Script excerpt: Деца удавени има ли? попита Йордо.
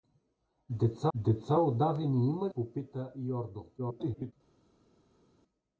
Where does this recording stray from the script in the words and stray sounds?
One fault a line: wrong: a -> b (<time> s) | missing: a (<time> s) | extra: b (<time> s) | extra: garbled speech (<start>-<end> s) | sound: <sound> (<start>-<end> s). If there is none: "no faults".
extra: деца (1.1 s)
missing: ли (2.5 s)
extra: garbled speech (3.8-4.3 s)